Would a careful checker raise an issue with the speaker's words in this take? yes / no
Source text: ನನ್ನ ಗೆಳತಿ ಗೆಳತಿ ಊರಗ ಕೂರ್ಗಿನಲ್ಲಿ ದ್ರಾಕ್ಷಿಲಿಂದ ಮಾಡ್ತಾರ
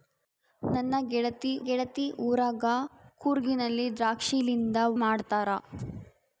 no